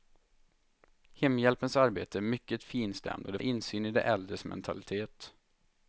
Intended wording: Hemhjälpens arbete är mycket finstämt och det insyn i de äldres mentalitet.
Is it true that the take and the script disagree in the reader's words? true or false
false